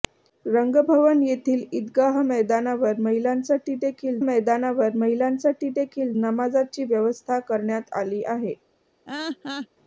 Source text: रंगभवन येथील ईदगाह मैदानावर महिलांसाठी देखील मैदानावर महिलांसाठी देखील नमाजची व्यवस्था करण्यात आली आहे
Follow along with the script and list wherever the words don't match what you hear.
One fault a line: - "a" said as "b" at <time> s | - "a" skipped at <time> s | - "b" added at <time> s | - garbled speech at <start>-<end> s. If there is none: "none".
none